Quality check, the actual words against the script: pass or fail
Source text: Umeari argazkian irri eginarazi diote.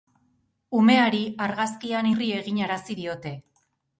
pass